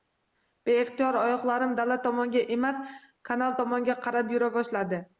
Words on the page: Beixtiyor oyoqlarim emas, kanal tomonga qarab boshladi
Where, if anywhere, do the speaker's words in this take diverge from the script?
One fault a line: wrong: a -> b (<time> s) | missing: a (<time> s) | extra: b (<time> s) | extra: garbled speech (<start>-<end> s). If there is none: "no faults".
extra: dala tomonga (1.8 s)
extra: yura (4.4 s)